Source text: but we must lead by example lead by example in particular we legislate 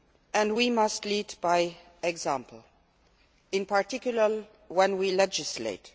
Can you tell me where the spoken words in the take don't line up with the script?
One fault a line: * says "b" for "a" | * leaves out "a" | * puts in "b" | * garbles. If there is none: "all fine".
* says "and" for "but"
* leaves out "lead by example"
* puts in "when"